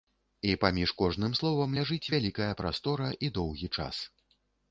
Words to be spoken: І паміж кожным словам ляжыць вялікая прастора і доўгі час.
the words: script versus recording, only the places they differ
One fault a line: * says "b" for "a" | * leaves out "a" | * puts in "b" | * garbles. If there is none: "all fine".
all fine